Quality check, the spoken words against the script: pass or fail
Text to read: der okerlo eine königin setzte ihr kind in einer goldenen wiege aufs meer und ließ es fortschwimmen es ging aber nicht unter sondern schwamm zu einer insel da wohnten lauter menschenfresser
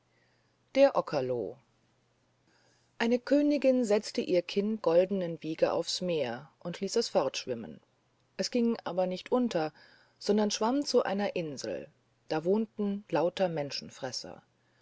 fail